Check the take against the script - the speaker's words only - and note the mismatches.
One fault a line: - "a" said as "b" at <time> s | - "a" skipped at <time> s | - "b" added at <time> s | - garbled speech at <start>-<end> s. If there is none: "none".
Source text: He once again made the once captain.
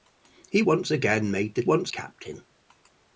none